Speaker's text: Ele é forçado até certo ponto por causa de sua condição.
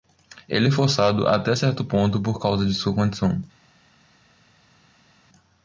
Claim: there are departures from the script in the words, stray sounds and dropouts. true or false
false